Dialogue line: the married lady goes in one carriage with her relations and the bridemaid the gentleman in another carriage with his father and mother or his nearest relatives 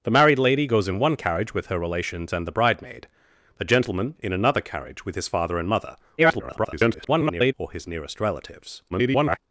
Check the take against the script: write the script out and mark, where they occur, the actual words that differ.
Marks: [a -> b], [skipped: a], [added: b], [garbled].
the married lady goes in one carriage with her relations and the bridemaid the gentleman in another carriage with his father and mother [garbled] or his nearest relatives [garbled]